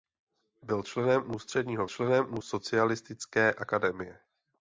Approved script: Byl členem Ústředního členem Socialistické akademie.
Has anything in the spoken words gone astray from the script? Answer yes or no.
no